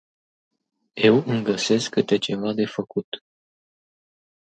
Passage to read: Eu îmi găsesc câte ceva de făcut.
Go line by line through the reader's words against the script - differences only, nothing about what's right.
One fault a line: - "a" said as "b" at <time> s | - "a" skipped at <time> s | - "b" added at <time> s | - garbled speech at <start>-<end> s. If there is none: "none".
none